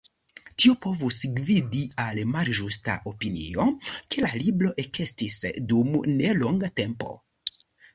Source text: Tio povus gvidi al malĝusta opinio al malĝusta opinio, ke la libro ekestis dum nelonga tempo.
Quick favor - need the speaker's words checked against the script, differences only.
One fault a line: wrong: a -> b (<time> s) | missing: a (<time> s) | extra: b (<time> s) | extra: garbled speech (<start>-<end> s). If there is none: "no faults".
missing: al malĝusta opinio (3.7 s)